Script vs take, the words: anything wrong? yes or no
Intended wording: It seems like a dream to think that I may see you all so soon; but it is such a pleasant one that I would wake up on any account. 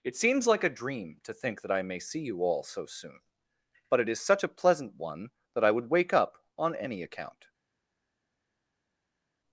no